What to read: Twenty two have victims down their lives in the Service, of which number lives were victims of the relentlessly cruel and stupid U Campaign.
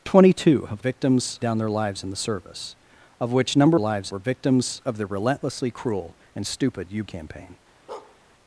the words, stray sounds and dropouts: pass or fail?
fail